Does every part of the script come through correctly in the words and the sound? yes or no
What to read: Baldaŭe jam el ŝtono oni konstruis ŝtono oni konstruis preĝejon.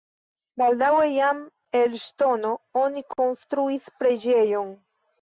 no